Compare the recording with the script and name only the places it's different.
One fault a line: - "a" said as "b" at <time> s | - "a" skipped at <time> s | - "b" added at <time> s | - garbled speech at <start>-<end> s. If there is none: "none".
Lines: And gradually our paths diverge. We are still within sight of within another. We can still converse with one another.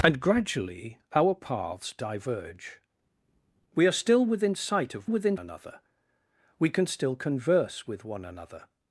none